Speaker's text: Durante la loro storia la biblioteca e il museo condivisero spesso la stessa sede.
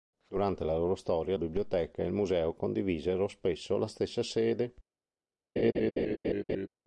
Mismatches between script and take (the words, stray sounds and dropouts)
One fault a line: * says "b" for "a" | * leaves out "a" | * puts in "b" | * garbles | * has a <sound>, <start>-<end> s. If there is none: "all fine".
* leaves out "la"
* has a laugh, 5.6-6.7 s